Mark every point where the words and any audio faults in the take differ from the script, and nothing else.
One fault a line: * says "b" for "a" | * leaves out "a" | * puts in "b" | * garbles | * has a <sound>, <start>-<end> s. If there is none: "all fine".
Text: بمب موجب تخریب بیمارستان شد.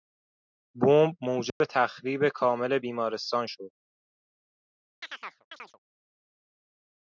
* has a dropout, 1.5-1.6 s
* puts in "کامل"
* has a chirp, 5.0-5.8 s